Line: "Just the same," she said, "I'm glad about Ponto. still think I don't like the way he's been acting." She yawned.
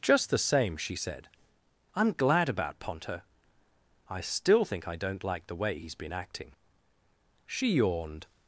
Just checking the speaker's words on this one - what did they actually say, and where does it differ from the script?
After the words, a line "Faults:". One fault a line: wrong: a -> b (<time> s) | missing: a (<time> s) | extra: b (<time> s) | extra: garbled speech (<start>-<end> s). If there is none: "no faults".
"Just the same," she said, "I'm glad about Ponto. I still think I don't like the way he's been acting." She yawned.
Faults:
extra: I (4.1 s)